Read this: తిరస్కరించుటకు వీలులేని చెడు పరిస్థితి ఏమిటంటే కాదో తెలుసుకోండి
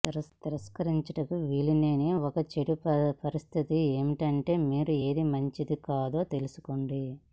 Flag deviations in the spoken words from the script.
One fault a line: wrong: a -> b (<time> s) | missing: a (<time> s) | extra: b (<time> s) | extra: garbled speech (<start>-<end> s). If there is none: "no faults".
extra: ఒక (2.2 s)
extra: మీరు ఏది మంచిది (4.6 s)